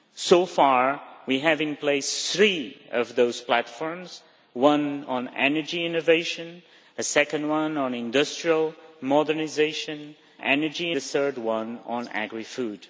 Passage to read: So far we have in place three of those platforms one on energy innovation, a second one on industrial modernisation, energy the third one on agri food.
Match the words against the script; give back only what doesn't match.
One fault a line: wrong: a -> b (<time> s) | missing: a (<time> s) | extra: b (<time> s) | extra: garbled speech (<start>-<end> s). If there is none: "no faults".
no faults